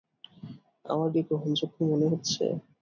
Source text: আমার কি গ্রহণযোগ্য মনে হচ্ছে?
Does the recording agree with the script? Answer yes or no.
yes